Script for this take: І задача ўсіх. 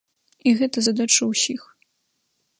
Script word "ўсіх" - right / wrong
right